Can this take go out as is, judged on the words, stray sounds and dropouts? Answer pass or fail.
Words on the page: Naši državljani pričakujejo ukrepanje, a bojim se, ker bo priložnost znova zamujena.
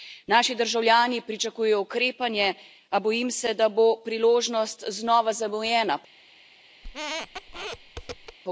fail